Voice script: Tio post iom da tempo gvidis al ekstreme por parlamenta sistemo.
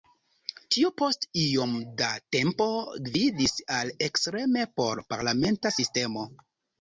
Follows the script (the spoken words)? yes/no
yes